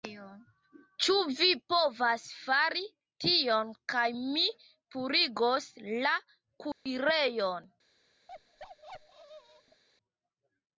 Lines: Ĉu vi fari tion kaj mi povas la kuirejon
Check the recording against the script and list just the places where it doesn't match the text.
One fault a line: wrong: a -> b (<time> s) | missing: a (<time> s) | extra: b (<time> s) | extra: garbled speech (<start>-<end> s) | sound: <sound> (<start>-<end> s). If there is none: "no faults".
extra: povas (1.7 s)
wrong: povas -> purigos (5.0 s)
sound: dropout (6.7-6.9 s)
sound: bark (8.3-9.8 s)